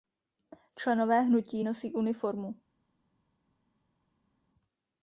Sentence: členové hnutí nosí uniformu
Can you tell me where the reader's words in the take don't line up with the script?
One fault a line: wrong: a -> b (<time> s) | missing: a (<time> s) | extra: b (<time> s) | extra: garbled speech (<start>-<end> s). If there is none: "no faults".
no faults